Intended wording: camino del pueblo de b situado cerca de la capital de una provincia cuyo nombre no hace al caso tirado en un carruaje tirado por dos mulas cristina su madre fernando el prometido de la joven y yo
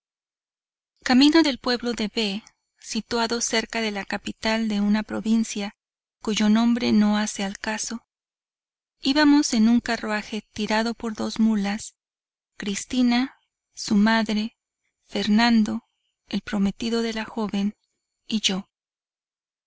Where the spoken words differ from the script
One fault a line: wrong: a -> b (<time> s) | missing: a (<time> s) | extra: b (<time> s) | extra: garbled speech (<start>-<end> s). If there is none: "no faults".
wrong: tirado -> íbamos (9.0 s)